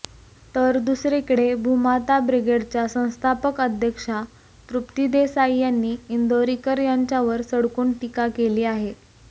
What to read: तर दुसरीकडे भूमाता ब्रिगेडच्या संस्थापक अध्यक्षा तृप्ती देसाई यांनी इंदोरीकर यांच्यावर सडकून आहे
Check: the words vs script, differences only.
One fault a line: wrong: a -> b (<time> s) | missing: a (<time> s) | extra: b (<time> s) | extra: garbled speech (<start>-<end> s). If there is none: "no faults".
extra: टीका केली (8.0 s)